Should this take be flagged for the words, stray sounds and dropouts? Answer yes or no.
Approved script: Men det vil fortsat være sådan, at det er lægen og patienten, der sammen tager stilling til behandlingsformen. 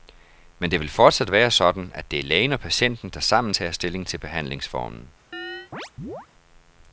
yes